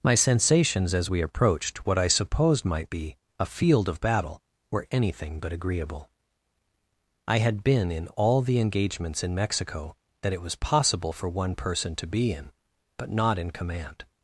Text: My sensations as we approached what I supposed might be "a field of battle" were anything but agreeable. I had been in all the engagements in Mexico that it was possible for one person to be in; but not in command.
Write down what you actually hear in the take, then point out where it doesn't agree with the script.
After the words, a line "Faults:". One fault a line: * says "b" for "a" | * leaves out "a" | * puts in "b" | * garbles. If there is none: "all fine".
My sensations as we approached what I supposed might be "a field of battle" were anything but agreeable. I had been in all the engagements in Mexico that it was possible for one person to be in; but not in command.
Faults:
all fine